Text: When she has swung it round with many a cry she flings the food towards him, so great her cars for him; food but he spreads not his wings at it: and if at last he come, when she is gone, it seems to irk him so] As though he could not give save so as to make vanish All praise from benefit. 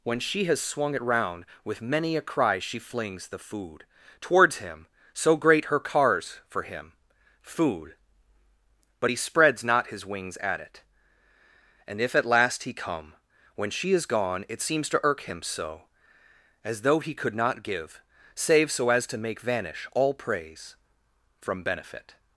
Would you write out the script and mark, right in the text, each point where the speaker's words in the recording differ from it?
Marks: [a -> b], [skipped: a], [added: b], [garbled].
When she has swung it round with many a cry she flings the food towards him, so great her cars for him; food but he spreads not his wings at it: and if at last he come, when she is gone, it seems to irk him so] As though he could not give save so as to make vanish All praise from benefit.